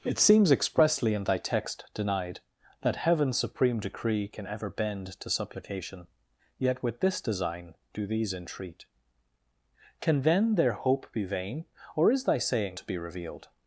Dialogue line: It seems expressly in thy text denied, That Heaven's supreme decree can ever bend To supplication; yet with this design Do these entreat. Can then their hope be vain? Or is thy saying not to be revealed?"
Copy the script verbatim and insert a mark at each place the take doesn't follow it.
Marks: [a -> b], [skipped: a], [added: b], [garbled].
It seems expressly in thy text denied, That Heaven's supreme decree can ever bend To supplication; yet with this design Do these entreat. Can then their hope be vain? Or is thy saying [skipped: not] to be revealed?"